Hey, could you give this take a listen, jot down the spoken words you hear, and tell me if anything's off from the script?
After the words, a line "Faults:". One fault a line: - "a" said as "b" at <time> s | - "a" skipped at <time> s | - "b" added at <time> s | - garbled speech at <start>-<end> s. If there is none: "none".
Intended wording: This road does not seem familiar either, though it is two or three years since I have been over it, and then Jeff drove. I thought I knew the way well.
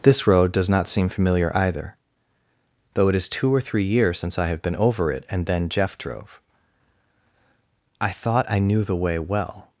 This road does not seem familiar either, though it is two or three years since I have been over it, and then Jeff drove. I thought I knew the way well.
Faults:
none